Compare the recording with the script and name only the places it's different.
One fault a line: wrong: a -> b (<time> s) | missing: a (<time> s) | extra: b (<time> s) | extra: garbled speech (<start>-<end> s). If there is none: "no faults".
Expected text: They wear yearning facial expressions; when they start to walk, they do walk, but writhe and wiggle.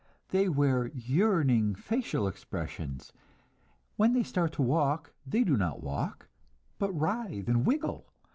extra: not (5.6 s)